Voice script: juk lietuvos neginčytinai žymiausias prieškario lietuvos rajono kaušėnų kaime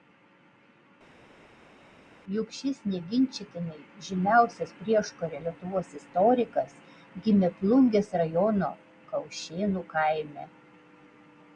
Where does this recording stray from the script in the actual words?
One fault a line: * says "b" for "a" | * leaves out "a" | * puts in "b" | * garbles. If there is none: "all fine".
* says "šis" for "lietuvos"
* puts in "istorikas gimė plungės"